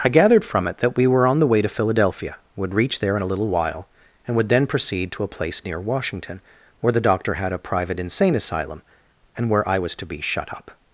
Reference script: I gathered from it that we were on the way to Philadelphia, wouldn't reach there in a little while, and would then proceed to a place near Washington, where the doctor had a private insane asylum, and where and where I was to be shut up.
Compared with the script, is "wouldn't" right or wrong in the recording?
wrong